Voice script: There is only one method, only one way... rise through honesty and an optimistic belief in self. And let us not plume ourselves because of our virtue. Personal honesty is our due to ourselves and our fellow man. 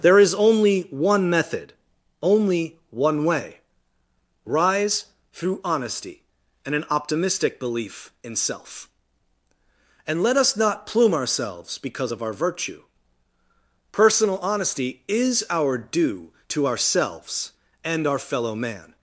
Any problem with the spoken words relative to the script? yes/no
no